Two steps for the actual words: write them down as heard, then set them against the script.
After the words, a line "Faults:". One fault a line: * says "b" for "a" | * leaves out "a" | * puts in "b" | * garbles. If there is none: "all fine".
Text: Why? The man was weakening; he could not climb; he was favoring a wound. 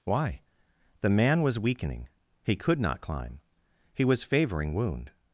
Why? The man was weakening; he could not climb; he was favoring wound.
Faults:
* leaves out "a"